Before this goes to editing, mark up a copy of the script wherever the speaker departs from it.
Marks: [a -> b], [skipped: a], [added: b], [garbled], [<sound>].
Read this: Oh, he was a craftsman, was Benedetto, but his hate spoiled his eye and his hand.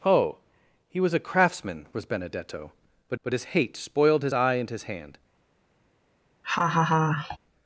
Oh, he was a craftsman, was Benedetto, but [added: but] his hate spoiled his eye and his hand. [laugh]